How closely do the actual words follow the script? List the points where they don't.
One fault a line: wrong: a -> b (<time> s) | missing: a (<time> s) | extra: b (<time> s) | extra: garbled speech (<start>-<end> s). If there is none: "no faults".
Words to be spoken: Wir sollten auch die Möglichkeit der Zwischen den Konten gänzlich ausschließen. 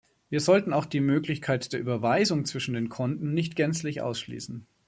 extra: Überweisung (1.8 s)
extra: nicht (3.3 s)